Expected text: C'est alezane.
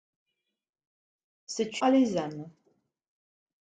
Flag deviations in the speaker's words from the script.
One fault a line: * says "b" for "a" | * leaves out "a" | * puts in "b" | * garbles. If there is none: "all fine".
all fine